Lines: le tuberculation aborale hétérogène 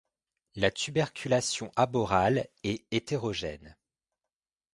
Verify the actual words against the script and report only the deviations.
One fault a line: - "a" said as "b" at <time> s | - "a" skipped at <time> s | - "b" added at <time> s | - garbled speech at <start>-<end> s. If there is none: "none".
- "le" said as "la" at 0.6 s
- "est" added at 2.6 s